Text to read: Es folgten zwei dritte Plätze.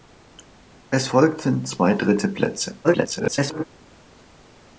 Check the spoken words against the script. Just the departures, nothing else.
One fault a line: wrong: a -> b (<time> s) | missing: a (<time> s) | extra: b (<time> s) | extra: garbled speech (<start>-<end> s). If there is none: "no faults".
extra: garbled speech (2.8-3.6 s)